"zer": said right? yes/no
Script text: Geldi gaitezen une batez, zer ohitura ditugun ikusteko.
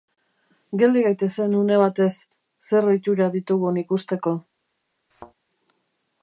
yes